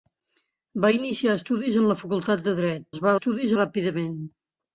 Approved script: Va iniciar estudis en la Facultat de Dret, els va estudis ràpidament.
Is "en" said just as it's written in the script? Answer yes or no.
yes